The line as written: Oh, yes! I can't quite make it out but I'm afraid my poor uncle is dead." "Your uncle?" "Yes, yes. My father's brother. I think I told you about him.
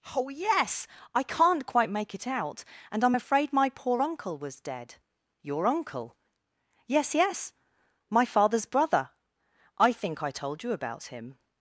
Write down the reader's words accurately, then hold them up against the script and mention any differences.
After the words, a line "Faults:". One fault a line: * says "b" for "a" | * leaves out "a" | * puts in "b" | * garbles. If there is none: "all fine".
Oh, yes! I can't quite make it out and I'm afraid my poor uncle was dead." "Your uncle?" "Yes, yes. My father's brother. I think I told you about him.
Faults:
* says "and" for "but"
* says "was" for "is"